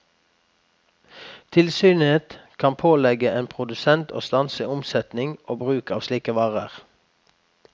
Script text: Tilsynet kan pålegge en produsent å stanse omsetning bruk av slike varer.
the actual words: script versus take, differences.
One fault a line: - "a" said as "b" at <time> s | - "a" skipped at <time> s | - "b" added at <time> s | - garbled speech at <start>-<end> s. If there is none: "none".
- "og" added at 5.5 s